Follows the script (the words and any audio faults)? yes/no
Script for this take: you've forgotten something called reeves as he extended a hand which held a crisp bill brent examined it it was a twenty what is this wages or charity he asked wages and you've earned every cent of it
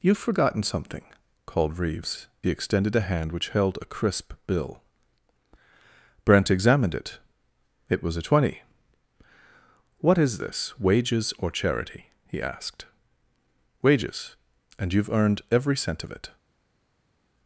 no